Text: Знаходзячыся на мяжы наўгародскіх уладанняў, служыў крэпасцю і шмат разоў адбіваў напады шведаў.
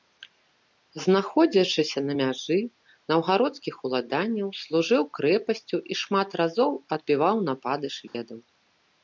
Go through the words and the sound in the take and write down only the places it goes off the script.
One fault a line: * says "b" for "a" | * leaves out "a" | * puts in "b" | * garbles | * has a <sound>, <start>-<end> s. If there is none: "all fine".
* has a dropout, 8.1-8.1 s